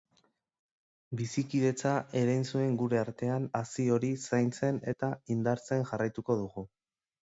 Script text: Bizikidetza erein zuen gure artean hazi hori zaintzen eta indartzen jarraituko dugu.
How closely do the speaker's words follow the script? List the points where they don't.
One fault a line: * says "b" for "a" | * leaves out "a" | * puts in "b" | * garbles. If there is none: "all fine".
all fine